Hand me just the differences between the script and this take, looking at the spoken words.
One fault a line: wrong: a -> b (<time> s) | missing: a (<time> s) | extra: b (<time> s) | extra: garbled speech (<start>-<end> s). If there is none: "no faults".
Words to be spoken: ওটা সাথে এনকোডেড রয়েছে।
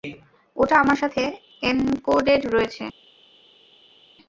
extra: আমার (0.8 s)